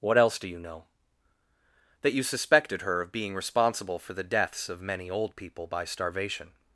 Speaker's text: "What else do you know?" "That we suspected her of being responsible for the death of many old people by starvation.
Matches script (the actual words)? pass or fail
fail